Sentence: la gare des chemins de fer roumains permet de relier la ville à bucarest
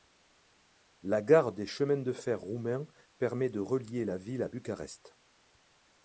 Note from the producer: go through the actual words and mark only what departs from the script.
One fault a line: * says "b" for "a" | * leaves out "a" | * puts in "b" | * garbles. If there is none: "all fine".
all fine